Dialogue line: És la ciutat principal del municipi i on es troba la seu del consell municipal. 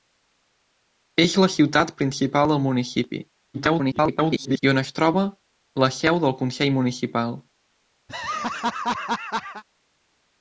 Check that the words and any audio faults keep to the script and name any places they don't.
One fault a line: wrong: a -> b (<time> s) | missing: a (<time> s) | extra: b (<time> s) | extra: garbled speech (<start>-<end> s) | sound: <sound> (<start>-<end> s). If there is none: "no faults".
extra: garbled speech (3.5-4.6 s)
sound: laugh (8.1-9.6 s)